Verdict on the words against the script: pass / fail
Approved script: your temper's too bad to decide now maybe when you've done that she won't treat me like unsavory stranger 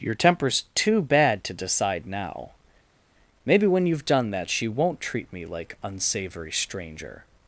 pass